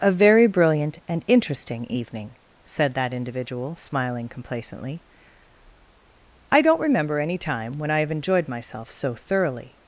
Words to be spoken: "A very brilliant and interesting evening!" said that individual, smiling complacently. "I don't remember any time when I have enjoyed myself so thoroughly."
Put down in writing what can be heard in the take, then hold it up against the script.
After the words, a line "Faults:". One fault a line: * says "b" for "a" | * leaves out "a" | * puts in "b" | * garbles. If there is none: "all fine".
"A very brilliant and interesting evening!" said that individual, smiling complacently. "I don't remember any time when I have enjoyed myself so thoroughly."
Faults:
all fine